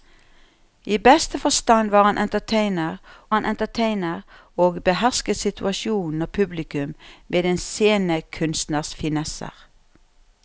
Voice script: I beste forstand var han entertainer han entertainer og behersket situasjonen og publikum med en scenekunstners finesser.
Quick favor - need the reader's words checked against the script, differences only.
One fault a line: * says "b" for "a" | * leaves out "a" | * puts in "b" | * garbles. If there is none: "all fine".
all fine